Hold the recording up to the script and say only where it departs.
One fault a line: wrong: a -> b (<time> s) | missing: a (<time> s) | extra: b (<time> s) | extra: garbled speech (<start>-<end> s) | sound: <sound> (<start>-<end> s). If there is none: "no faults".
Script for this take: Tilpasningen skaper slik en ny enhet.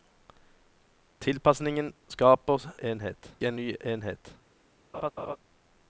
wrong: slik -> enhet (2.8 s)
sound: laugh (4.9-5.4 s)